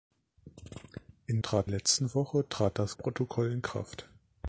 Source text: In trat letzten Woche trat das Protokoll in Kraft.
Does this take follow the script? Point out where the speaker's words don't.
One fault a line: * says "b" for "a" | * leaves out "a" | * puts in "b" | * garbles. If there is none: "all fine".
all fine